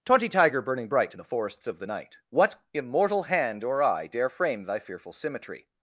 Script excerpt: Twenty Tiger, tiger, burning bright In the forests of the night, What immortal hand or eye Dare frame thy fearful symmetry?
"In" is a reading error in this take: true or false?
false